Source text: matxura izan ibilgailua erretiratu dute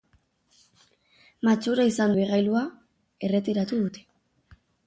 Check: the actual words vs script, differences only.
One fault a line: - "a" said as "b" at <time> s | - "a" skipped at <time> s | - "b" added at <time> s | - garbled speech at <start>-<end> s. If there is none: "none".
none